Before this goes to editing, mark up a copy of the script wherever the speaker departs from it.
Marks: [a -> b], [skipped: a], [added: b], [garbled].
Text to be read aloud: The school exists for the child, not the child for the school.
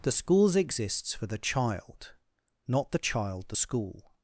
The [school -> schools] exists for the child, not the child [skipped: for] the school.